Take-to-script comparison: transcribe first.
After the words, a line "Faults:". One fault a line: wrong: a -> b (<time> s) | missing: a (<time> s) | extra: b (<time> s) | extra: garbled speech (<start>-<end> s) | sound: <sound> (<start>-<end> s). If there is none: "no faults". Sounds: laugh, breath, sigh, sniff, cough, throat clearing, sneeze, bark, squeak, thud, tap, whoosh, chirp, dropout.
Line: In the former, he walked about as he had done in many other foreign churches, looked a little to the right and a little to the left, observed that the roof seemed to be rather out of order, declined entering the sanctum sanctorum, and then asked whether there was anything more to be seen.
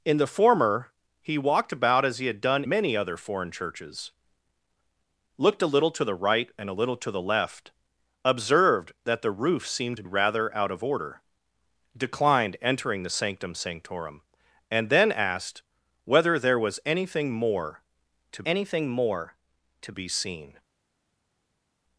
In the former, he walked about as he had done many other foreign churches, looked a little to the right and a little to the left, observed that the roof seemed to rather out of order, declined entering the sanctum sanctorum, and then asked whether there was anything more to anything more to be seen.
Faults:
missing: in (2.6 s)
missing: be (10.0 s)
extra: anything more to (18.4 s)